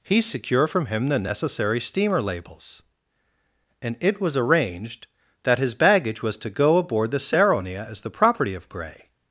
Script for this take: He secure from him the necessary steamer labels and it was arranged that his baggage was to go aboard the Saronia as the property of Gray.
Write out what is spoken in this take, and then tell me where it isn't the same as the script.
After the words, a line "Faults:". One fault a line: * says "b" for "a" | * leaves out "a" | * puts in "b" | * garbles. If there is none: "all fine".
He secure from him the necessary steamer labels and it was arranged that his baggage was to go aboard the Saronia as the property of Gray.
Faults:
all fine